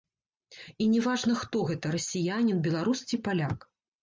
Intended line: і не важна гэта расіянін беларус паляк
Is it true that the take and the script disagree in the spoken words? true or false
true